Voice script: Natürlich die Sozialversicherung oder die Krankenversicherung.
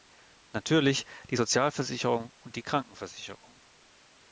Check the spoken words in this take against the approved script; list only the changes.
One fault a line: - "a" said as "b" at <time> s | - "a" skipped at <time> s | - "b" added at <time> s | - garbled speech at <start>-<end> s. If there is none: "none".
- "oder" said as "und" at 2.4 s